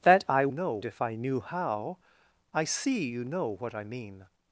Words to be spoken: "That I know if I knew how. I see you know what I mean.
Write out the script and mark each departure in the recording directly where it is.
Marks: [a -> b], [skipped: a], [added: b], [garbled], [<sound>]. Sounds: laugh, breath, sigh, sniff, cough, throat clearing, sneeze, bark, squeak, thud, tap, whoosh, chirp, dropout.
"That I know if I knew how. I see you know what I mean.